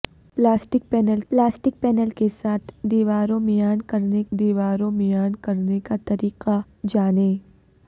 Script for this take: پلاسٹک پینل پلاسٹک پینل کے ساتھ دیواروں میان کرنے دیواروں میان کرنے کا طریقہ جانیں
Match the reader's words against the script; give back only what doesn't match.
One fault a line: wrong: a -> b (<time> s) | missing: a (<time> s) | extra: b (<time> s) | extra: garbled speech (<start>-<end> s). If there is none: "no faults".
no faults